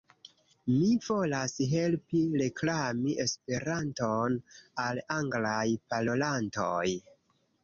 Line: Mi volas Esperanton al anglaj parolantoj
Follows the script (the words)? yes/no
no